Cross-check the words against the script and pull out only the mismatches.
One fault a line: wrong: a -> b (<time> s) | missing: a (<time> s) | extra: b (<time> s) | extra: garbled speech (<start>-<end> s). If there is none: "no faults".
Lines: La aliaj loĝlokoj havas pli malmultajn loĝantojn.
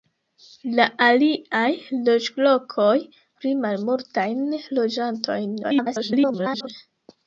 missing: havas (3.0 s)
extra: garbled speech (5.6-6.7 s)